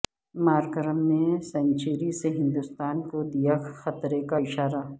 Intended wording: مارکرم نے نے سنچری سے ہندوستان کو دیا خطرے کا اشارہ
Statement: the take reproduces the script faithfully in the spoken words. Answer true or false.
false